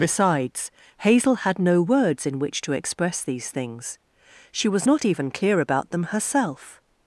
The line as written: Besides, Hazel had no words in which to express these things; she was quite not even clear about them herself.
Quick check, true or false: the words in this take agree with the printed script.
false